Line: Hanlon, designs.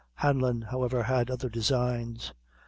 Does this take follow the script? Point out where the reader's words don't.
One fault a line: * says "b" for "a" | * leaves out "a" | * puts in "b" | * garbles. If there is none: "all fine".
* puts in "however had other"